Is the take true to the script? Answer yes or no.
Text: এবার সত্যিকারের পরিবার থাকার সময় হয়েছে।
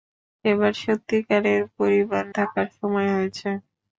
yes